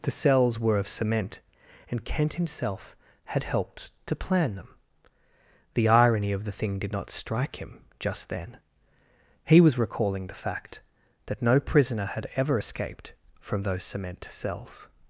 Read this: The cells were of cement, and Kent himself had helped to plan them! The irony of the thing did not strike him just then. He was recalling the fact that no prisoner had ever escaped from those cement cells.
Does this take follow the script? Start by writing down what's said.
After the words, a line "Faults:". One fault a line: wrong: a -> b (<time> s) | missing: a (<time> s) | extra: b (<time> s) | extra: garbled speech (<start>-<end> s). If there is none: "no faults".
The cells were of cement, and Kent himself had helped to plan them! The irony of the thing did not strike him just then. He was recalling the fact that no prisoner had ever escaped from those cement cells.
Faults:
no faults